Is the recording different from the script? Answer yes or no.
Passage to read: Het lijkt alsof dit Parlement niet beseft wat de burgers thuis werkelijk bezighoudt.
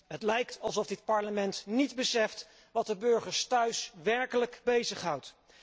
no